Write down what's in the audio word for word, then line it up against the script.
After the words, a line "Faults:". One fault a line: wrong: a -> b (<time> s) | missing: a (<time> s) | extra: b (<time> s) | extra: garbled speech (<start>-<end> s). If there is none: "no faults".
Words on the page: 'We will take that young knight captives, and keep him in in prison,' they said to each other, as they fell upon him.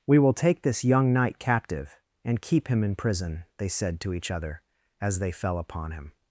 'We will take this young knight captive, and keep him in prison,' they said to each other, as they fell upon him.
Faults:
wrong: that -> this (0.6 s)
wrong: captives -> captive (1.4 s)
missing: in (3.0 s)